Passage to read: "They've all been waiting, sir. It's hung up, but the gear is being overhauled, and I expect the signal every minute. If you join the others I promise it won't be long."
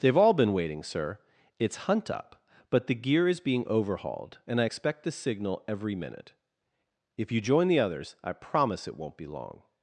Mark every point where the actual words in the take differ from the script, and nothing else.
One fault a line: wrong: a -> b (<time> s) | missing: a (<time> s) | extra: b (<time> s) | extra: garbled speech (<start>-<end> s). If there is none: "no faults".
wrong: hung -> hunt (1.9 s)